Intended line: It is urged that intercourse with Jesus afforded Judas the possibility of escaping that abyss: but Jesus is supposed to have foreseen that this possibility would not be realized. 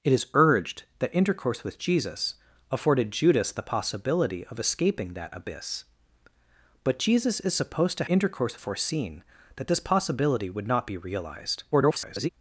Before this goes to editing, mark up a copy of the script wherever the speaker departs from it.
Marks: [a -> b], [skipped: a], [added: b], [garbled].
It is urged that intercourse with Jesus afforded Judas the possibility of escaping that abyss: but Jesus is supposed to [have -> intercourse] foreseen that this possibility would not be realized. [garbled]